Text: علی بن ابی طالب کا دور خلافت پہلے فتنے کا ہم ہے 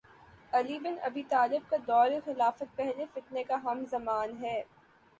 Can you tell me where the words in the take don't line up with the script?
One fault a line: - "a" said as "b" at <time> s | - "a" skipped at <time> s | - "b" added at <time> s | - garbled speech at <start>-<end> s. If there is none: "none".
- "زمان" added at 3.9 s